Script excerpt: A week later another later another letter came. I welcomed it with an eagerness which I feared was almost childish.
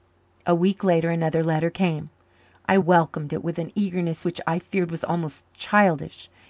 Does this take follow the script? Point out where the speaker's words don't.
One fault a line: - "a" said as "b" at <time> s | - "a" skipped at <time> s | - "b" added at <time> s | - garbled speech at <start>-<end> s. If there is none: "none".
- "later another" skipped at 1.4 s